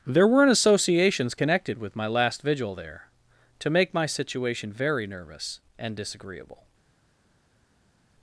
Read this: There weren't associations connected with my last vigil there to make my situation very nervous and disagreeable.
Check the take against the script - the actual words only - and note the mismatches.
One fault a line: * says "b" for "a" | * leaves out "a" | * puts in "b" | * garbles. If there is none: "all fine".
all fine